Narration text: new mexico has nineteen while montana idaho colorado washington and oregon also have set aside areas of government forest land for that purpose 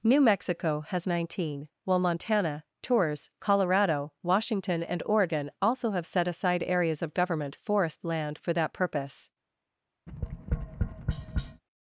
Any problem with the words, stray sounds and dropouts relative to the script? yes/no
yes